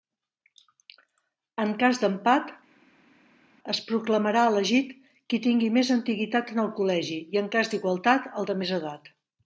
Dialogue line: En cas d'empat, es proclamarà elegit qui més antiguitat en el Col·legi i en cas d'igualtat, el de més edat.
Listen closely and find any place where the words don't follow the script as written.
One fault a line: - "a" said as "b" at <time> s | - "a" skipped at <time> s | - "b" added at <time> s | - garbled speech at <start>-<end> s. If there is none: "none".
- "tingui" added at 5.5 s